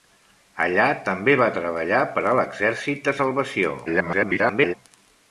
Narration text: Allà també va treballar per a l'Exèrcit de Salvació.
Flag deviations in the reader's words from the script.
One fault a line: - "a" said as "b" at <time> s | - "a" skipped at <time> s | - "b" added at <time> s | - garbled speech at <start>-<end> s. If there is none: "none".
- garbled speech at 3.9-4.7 s